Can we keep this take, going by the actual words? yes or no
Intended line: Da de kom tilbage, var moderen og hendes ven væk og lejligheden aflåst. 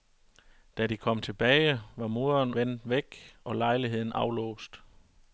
no